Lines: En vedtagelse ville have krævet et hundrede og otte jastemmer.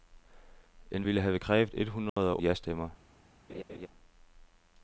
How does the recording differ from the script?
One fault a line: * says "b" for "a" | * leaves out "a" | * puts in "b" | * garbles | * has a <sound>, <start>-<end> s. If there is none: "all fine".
* leaves out "vedtagelse"
* has a dropout, 2.1-2.2 s
* leaves out "otte"
* has a laugh, 3.5-3.9 s